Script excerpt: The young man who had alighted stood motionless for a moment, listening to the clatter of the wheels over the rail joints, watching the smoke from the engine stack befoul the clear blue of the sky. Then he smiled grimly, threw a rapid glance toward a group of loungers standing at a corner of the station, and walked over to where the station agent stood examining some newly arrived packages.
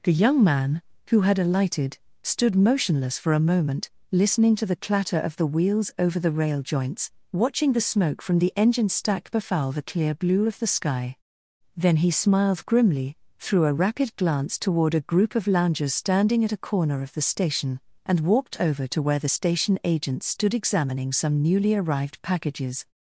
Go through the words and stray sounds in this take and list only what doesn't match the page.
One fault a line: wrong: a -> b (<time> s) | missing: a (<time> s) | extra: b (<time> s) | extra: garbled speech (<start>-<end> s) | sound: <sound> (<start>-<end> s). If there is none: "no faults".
no faults